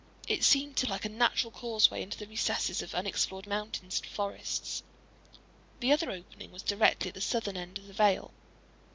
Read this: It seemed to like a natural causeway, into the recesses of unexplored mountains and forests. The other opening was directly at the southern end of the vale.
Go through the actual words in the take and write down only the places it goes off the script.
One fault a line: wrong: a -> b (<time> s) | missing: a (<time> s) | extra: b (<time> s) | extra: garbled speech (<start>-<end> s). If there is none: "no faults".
no faults